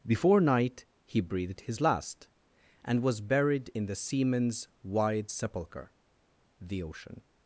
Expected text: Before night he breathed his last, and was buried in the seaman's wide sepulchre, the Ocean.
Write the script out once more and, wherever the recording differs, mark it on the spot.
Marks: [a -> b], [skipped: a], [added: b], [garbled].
Before night he breathed his last, and was buried in the seaman's wide sepulchre, the Ocean.